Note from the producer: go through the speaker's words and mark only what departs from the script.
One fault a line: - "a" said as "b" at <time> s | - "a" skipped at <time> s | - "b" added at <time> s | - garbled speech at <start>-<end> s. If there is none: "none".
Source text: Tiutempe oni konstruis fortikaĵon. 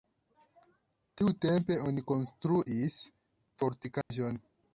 none